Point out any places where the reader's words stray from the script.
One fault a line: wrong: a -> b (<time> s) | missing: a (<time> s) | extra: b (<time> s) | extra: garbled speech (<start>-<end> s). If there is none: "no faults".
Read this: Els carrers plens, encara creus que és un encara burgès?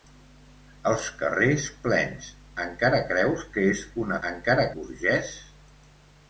no faults